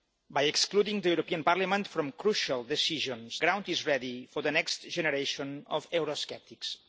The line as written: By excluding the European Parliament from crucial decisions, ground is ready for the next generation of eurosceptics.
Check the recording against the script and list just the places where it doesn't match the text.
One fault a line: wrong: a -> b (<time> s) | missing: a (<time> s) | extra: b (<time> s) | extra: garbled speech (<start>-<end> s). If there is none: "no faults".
no faults